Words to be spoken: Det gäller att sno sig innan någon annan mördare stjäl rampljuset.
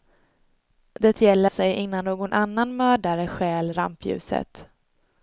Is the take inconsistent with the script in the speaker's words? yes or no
yes